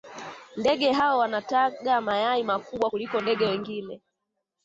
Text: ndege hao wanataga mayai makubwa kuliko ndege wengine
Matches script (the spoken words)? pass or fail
pass